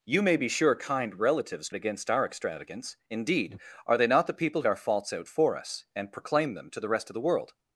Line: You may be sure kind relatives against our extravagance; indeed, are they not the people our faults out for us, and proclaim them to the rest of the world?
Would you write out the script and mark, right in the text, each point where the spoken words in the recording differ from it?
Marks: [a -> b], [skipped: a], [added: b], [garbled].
You may be sure kind relatives against our extravagance; indeed, are they not the people our faults out for us, and proclaim them to the rest of the world?